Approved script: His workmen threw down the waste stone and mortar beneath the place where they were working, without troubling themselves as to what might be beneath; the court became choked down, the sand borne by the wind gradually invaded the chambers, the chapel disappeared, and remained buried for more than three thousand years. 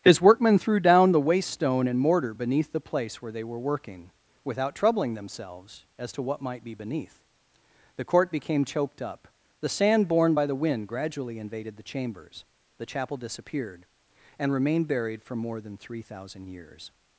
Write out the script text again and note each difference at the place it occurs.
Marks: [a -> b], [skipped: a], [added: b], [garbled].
His workmen threw down the waste stone and mortar beneath the place where they were working, without troubling themselves as to what might be beneath; the court became choked [down, -> up] the sand borne by the wind gradually invaded the chambers, the chapel disappeared, and remained buried for more than three thousand years.